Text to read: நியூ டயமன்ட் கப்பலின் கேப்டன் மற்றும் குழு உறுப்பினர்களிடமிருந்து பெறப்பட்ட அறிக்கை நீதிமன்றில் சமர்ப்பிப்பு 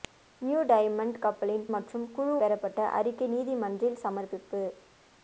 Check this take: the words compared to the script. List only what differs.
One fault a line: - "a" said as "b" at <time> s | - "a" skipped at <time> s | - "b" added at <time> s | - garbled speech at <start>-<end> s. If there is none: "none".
- "கேப்டன்" skipped at 1.6 s
- "உறுப்பினர்களிடமிருந்து" skipped at 2.3 s